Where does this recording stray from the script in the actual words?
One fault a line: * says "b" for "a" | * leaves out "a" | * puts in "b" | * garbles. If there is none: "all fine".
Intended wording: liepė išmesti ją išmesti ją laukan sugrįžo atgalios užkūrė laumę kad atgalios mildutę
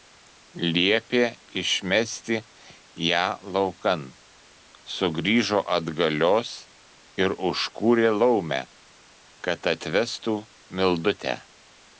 * leaves out "išmesti ją"
* puts in "ir"
* says "atvestų" for "atgalios"